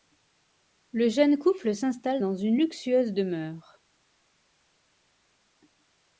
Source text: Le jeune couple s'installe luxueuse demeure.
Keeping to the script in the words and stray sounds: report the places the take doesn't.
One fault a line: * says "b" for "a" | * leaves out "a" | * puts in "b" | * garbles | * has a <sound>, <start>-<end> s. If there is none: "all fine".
* puts in "dans une"